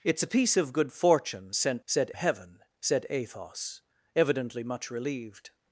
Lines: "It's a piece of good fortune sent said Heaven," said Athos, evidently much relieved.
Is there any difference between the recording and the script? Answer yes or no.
no